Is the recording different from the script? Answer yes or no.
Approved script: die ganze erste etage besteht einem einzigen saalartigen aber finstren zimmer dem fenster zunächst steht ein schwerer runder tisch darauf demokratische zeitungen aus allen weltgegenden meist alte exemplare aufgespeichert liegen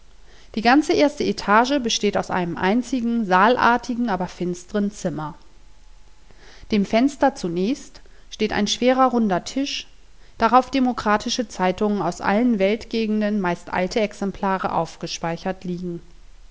yes